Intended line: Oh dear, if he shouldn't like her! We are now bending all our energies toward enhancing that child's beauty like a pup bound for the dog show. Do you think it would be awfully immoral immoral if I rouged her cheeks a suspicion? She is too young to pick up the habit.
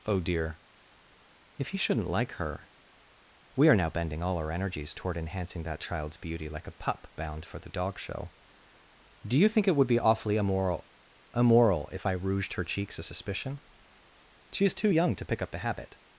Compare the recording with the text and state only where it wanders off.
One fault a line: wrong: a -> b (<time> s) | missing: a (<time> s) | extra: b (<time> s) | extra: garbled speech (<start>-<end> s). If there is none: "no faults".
no faults